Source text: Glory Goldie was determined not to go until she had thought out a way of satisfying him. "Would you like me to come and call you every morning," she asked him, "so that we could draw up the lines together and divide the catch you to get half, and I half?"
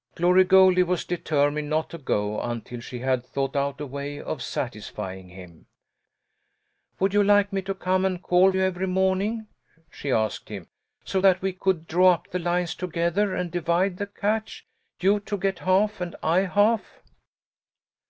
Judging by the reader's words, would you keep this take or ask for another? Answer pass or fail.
pass